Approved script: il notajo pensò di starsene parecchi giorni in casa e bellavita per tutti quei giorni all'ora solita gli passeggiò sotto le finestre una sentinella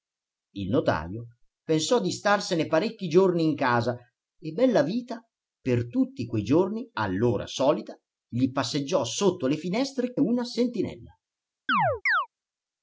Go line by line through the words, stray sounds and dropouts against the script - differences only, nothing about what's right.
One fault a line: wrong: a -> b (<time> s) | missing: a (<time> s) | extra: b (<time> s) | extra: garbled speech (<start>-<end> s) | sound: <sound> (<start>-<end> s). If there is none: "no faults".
sound: chirp (11.7-12.3 s)